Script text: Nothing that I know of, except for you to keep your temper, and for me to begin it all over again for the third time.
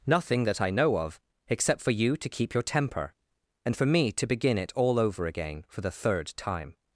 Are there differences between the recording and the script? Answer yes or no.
no